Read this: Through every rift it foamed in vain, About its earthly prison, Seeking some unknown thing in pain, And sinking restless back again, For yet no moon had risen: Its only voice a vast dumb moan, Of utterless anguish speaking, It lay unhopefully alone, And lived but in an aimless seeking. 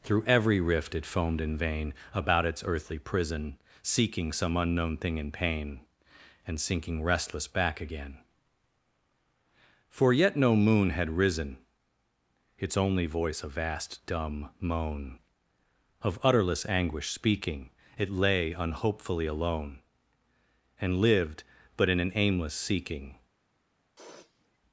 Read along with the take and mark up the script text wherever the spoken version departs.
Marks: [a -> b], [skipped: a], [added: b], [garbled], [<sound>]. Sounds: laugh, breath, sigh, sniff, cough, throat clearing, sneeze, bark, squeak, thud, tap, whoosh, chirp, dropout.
Through every rift it foamed in vain, About its earthly prison, Seeking some unknown thing in pain, And sinking restless back again, For yet no moon had risen: Its only voice a vast dumb moan, Of utterless anguish speaking, It lay unhopefully alone, And lived but in an aimless seeking. [sniff]